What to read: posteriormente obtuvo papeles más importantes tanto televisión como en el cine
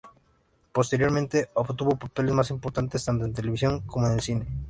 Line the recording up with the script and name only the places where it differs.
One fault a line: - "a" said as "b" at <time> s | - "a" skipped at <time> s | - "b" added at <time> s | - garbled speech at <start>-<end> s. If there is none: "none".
- "en" added at 3.2 s